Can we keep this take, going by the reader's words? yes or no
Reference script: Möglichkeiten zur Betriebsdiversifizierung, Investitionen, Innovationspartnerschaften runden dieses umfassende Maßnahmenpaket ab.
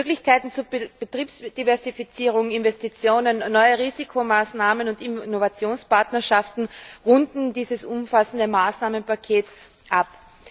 no